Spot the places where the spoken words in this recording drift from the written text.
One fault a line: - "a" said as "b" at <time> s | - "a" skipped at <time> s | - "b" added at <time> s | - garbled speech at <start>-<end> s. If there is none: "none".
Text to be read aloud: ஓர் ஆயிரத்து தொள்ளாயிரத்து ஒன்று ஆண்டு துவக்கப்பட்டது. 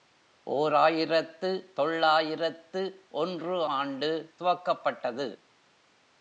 none